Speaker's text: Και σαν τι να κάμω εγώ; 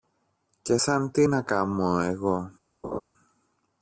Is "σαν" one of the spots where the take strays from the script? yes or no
no